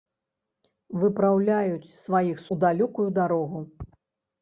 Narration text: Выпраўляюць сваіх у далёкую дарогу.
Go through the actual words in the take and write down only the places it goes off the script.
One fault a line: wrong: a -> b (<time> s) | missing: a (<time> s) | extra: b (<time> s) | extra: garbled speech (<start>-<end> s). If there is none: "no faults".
no faults